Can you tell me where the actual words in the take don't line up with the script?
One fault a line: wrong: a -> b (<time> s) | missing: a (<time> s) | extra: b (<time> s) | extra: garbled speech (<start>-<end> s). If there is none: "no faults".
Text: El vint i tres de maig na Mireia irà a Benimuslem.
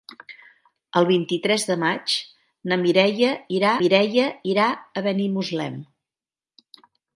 extra: Mireia irà (3.8 s)